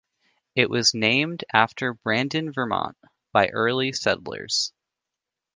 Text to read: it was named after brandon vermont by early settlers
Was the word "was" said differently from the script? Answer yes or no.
no